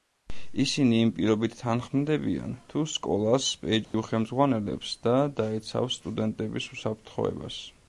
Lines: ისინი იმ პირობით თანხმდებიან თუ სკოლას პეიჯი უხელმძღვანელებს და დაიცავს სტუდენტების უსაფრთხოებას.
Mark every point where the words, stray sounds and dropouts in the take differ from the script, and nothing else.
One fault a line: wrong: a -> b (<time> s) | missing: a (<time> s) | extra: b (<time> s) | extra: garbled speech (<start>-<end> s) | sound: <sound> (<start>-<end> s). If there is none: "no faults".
sound: dropout (3.8-3.9 s)